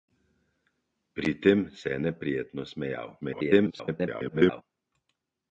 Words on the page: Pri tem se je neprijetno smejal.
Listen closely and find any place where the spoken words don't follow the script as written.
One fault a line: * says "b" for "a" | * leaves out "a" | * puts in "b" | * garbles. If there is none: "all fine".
* garbles